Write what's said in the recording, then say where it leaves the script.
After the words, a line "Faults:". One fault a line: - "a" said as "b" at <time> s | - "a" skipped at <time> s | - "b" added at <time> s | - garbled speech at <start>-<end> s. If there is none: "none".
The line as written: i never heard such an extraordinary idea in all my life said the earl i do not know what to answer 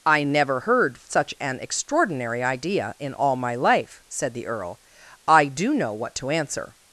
i never heard such an extraordinary idea in all my life said the earl i do know what to answer
Faults:
- "not" skipped at 5.7 s